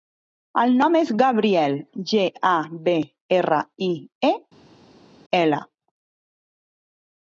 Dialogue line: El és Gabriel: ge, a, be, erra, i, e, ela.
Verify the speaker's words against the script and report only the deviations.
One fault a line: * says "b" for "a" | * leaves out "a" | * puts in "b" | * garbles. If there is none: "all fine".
* puts in "nom"